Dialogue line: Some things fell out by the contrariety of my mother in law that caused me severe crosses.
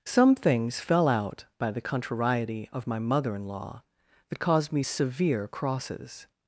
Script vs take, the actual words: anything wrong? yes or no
no